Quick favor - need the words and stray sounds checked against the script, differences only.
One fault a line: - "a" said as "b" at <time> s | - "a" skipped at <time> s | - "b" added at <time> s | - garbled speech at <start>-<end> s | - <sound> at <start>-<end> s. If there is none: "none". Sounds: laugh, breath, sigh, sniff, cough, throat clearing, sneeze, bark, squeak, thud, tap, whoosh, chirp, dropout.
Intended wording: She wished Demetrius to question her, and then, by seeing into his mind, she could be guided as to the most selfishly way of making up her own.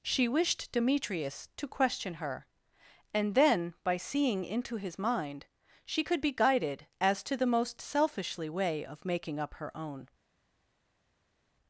none